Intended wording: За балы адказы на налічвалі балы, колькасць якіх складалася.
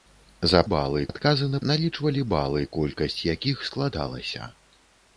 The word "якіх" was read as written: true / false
true